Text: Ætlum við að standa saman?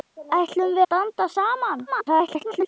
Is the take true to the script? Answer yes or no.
no